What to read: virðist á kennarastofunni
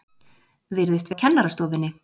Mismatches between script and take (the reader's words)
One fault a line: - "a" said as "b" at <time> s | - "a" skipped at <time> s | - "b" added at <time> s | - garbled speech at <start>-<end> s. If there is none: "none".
none